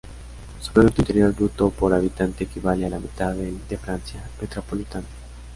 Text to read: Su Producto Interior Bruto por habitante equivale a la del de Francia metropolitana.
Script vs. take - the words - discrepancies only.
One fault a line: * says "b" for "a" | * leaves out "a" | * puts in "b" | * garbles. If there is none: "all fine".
* puts in "mitad"